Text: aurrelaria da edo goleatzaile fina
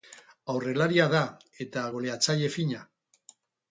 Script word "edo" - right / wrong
wrong